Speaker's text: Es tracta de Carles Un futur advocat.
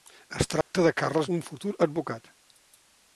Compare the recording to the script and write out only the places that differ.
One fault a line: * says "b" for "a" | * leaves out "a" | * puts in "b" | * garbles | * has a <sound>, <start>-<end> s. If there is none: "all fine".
* has a dropout, 0.6-0.7 s